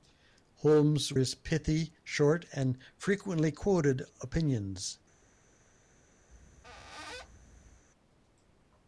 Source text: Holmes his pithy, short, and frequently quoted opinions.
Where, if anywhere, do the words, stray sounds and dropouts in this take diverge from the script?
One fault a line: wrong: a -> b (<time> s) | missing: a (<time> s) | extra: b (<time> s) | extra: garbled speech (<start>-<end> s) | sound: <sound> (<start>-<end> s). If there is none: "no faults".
sound: squeak (6.3-7.8 s)